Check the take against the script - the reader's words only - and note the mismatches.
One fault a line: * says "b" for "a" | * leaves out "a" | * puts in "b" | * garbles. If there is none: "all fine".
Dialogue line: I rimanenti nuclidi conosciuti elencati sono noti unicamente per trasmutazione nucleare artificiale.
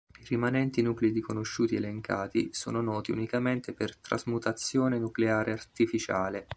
all fine